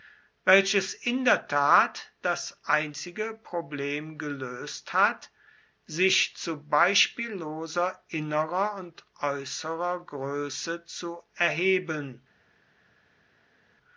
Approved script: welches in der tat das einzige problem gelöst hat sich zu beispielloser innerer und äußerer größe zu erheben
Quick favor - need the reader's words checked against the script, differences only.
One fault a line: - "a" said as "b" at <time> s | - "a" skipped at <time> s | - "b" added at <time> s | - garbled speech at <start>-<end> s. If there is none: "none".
none